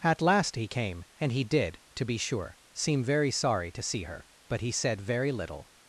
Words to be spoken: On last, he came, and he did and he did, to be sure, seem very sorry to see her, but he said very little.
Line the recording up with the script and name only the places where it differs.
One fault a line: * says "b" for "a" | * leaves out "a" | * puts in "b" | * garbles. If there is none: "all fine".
* says "At" for "On"
* leaves out "and he did"